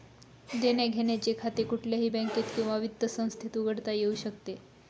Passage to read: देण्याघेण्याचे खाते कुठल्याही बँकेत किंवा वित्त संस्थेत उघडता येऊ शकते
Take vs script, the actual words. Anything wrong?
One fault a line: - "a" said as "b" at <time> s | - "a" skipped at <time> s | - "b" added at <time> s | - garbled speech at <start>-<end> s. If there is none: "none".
none